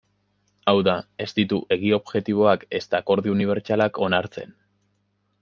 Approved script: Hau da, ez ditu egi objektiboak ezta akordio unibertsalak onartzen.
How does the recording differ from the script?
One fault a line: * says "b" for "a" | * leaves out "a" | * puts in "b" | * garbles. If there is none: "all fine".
all fine